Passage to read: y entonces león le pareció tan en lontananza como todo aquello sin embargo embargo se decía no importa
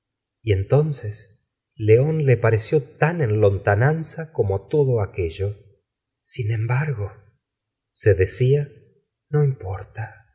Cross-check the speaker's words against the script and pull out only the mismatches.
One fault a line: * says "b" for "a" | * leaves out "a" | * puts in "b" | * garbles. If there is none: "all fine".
* leaves out "embargo"